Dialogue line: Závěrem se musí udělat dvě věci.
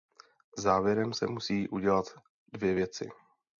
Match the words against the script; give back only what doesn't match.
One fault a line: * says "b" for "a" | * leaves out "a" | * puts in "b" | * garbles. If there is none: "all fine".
all fine